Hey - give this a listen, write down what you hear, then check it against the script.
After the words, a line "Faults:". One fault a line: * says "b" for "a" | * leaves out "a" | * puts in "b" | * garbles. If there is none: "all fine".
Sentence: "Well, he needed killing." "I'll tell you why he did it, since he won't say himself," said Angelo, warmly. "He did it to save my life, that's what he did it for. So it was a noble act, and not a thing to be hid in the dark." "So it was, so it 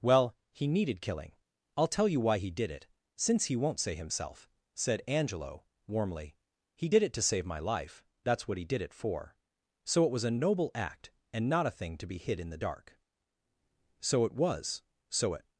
"Well, he needed killing." "I'll tell you why he did it, since he won't say himself," said Angelo, warmly. "He did it to save my life, that's what he did it for. So it was a noble act, and not a thing to be hid in the dark." "So it was, so it
Faults:
all fine